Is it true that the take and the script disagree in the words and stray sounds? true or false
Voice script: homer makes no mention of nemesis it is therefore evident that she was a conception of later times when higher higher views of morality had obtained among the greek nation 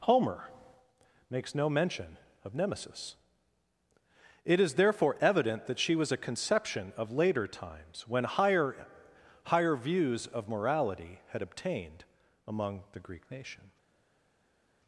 false